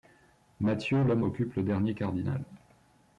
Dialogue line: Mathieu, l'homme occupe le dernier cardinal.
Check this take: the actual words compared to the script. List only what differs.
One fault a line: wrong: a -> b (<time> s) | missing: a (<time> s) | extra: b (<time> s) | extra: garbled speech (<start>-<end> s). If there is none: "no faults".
no faults